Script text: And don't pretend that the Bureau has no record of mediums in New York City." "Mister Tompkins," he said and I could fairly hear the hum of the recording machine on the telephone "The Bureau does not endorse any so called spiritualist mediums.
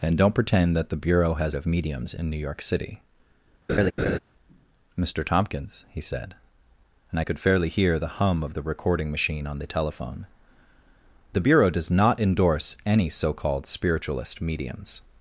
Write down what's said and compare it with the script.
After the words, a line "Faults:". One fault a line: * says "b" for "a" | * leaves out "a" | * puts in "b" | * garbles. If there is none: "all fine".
And don't pretend that the Bureau has of mediums in New York City." "Mister Tompkins," he said and I could fairly hear the hum of the recording machine on the telephone "The Bureau does not endorse any so called spiritualist mediums.
Faults:
* leaves out "no record"